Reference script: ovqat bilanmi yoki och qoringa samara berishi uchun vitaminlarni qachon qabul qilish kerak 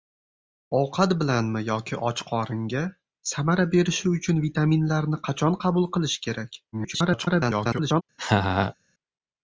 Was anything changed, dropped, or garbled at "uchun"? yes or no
no